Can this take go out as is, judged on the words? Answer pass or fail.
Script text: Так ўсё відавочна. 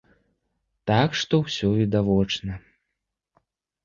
fail